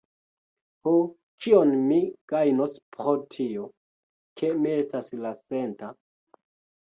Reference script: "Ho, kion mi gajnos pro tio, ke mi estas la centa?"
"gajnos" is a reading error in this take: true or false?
false